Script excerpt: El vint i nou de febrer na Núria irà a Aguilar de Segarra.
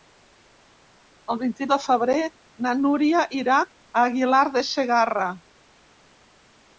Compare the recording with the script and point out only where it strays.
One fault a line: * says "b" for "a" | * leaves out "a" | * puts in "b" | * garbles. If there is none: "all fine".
* leaves out "nou"